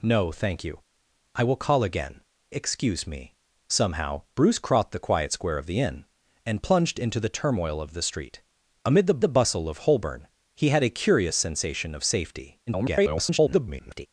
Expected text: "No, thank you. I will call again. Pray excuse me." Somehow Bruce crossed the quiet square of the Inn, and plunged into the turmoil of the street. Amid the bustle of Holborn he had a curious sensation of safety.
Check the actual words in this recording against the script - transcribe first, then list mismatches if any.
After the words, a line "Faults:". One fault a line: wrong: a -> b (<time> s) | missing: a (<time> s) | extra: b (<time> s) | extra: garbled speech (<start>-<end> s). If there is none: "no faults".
"No, thank you. I will call again. Excuse me." Somehow Bruce crossed the quiet square of the Inn, and plunged into the turmoil of the street. Amid the the bustle of Holborn he had a curious sensation of safety. [garbled]
Faults:
missing: Pray (2.2 s)
extra: the (9.2 s)
extra: garbled speech (12.7-14.1 s)